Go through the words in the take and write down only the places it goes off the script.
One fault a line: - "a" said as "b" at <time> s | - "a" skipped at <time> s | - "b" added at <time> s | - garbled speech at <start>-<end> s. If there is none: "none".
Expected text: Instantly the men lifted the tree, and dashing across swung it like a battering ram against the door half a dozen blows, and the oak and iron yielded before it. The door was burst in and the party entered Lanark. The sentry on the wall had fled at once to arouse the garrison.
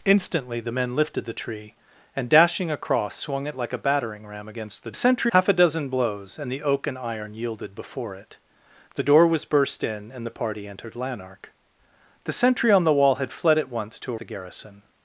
- "door" said as "sentry" at 4.9 s
- "arouse" skipped at 14.1 s